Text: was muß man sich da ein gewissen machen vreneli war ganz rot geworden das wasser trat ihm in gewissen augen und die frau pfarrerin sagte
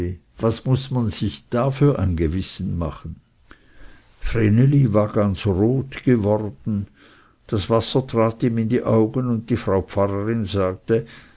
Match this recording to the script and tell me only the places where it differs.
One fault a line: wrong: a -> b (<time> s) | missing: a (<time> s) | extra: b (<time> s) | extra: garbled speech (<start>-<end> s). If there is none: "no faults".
extra: für (1.7 s)
wrong: gewissen -> die (8.7 s)